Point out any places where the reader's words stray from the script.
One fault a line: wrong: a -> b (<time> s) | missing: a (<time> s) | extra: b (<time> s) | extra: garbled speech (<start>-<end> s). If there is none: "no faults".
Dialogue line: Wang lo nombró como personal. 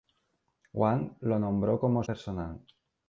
no faults